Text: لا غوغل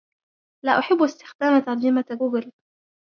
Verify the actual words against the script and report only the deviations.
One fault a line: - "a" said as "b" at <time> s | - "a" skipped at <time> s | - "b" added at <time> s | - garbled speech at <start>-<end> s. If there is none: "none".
- "أحب استخدام ترجمة" added at 0.8 s